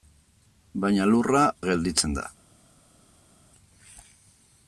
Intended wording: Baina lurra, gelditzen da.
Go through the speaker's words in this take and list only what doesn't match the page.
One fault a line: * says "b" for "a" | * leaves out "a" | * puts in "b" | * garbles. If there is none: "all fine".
all fine